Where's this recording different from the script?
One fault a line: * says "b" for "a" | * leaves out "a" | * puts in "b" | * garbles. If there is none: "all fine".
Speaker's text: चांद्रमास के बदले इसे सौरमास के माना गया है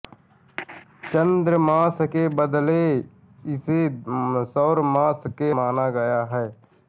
all fine